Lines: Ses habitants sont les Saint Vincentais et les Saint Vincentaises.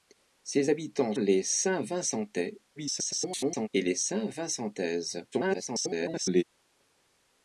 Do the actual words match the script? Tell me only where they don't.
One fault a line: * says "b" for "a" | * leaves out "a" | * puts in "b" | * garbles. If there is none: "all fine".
* leaves out "sont"
* garbles
* garbles